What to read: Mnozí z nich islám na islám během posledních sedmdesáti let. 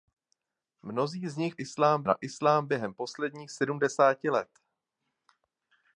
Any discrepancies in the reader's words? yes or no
no